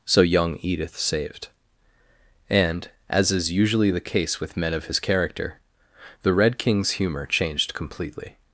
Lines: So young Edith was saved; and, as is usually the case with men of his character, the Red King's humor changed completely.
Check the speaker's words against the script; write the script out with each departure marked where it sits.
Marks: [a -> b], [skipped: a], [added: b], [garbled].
So young Edith [skipped: was] saved; and, as is usually the case with men of his character, the Red King's humor changed completely.